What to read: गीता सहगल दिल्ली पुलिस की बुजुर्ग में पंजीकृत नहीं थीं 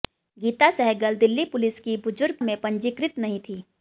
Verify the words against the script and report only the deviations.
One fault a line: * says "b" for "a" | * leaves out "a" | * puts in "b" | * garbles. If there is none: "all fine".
all fine